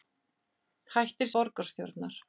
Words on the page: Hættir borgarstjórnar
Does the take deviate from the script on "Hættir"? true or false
false